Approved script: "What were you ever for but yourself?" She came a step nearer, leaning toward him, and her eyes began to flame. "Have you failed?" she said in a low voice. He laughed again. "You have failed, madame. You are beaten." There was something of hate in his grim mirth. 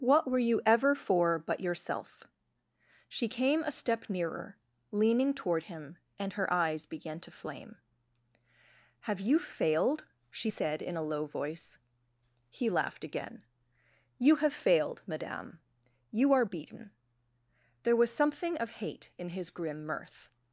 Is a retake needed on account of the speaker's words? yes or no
no